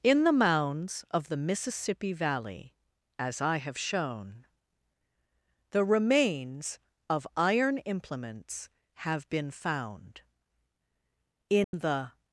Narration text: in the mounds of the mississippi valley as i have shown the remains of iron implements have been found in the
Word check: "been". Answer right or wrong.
right